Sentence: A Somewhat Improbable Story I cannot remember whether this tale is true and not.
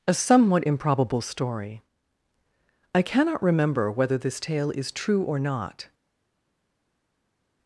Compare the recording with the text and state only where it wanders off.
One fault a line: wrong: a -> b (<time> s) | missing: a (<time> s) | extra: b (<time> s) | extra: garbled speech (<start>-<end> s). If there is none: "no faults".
wrong: and -> or (5.2 s)